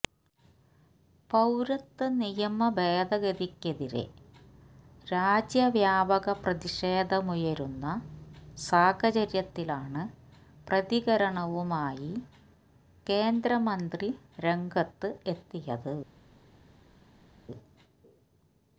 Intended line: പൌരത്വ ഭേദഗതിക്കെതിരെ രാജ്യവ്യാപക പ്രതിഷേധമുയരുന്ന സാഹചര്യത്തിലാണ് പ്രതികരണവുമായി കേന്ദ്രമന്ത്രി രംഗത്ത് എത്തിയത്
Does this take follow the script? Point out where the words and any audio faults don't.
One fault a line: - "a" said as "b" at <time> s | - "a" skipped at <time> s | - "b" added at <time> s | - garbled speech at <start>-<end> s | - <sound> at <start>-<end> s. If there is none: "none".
- "നിയമ" added at 2.1 s